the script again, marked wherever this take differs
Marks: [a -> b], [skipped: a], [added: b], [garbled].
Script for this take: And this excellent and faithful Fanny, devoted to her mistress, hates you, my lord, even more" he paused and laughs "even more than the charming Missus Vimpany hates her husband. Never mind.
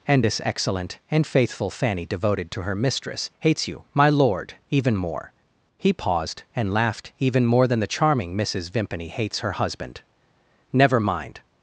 And this excellent and faithful Fanny, devoted to her mistress, hates you, my lord, even more" he paused and [laughs -> laughed] "even more than the charming Missus Vimpany hates her husband. Never mind.